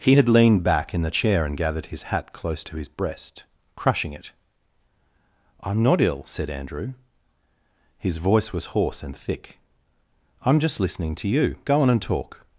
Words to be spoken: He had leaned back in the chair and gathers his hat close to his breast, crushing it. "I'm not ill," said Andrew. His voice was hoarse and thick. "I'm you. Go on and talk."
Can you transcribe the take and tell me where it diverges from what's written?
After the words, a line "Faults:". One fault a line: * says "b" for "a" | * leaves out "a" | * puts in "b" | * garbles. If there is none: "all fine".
He had leaned back in the chair and gathered his hat close to his breast, crushing it. "I'm not ill," said Andrew. His voice was hoarse and thick. "I'm just listening to you. Go on and talk."
Faults:
* says "gathered" for "gathers"
* puts in "just listening to"